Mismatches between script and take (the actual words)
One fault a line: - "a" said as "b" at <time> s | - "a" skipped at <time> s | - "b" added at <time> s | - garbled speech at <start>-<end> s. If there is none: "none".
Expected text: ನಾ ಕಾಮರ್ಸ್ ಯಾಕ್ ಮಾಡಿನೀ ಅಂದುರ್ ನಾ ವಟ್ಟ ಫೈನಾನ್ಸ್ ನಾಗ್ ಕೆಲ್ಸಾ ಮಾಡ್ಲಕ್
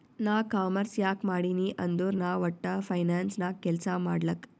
none